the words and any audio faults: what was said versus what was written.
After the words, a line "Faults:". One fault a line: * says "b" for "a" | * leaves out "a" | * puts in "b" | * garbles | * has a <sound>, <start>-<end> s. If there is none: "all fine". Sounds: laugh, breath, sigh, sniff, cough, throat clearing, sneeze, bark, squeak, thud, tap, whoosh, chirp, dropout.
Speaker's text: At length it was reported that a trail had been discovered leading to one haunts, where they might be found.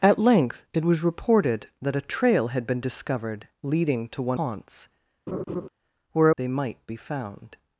At length it was reported that a trail had been discovered leading to one haunts, where they might be found.
Faults:
* has a laugh, 5.3-5.7 s